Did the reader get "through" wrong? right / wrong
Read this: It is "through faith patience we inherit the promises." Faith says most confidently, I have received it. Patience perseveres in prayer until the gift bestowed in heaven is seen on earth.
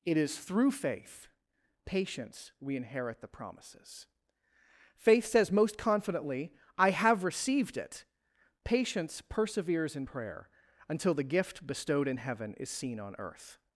right